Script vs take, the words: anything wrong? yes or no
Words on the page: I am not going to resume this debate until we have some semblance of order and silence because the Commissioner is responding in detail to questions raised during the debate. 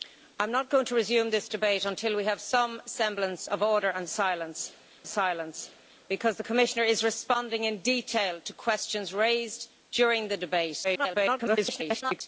yes